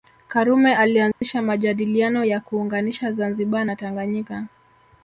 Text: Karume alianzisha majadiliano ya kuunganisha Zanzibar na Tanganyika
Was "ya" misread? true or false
false